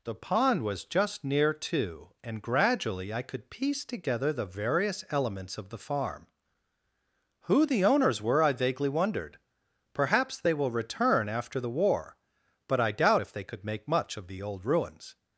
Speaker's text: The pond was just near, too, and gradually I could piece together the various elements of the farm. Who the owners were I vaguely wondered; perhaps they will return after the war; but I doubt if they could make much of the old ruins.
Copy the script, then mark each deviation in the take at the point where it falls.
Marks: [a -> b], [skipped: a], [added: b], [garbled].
The pond was just near, too, and gradually I could piece together the various elements of the farm. Who the owners were I vaguely wondered; perhaps they will return after the war; but I doubt if they could make much of the old ruins.